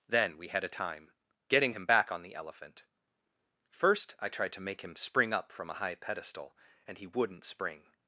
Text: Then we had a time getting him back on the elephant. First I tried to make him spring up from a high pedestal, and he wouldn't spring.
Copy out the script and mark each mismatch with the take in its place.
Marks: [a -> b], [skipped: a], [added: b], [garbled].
Then we had a time getting him back on the elephant. First I tried to make him spring up from a high pedestal, and he wouldn't spring.